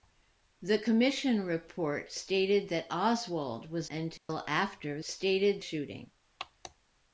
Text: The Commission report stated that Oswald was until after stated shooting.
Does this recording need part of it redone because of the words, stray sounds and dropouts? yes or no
yes